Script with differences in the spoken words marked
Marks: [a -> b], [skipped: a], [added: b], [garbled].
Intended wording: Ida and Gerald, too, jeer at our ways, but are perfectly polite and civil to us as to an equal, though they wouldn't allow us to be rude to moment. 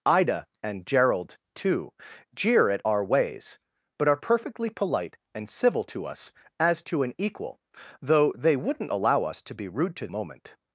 Ida and Gerald, too, jeer at our ways, but are perfectly polite and civil to us as to an equal, though they wouldn't allow us to be rude to moment.